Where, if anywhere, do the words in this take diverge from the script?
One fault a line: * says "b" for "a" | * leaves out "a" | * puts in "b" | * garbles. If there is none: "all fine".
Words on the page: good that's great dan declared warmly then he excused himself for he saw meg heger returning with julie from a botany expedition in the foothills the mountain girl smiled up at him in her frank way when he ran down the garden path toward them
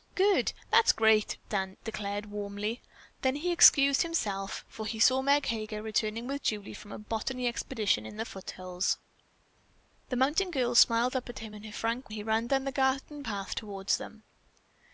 * leaves out "way when"